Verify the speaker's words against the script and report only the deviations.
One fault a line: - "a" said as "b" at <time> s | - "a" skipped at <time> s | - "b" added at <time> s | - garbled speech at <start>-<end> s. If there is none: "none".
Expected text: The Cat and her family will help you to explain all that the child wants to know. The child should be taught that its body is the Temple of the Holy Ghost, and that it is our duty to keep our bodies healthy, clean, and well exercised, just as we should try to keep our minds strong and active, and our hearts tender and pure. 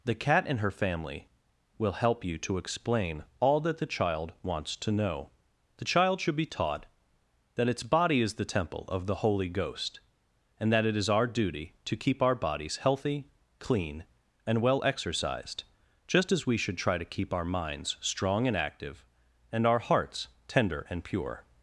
none